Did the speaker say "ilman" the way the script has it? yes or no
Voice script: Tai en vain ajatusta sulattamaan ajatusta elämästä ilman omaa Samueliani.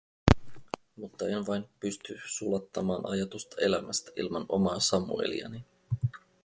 yes